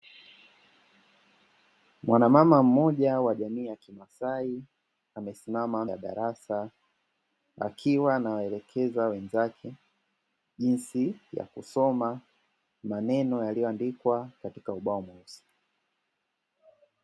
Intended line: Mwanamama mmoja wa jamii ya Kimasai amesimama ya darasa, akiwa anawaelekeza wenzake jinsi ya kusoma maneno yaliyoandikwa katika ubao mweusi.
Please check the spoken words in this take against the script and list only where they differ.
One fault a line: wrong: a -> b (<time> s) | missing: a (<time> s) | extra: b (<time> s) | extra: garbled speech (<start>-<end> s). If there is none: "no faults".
no faults